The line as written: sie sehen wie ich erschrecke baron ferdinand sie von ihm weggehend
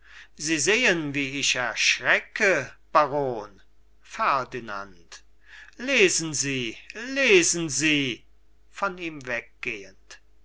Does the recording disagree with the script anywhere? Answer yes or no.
yes